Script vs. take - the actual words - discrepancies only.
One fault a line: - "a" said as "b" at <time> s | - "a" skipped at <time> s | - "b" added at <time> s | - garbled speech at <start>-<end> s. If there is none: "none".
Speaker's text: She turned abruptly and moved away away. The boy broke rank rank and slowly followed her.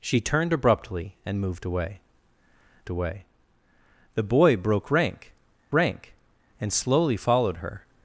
none